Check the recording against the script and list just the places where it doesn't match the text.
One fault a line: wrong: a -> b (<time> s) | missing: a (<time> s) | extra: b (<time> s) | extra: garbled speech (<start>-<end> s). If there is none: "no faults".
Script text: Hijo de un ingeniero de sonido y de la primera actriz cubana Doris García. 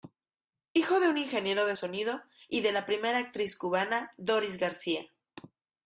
no faults